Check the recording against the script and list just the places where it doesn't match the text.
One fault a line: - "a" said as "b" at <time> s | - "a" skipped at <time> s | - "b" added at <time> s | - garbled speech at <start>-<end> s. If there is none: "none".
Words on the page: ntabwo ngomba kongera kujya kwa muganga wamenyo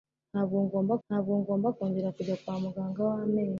- "ntabwo ngomba" added at 1.1 s